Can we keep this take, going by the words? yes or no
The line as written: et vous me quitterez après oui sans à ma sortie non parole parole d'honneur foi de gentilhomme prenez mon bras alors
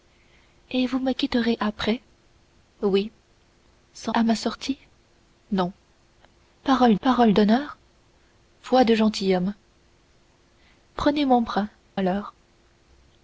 yes